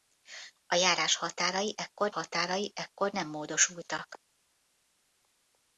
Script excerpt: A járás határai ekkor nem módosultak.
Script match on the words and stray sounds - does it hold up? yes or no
no